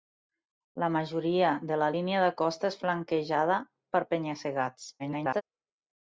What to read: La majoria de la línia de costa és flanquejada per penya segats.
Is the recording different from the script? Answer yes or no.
yes